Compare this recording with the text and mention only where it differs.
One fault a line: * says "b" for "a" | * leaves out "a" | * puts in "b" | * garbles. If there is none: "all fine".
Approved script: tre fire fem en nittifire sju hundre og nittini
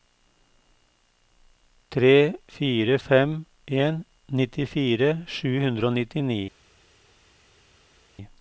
all fine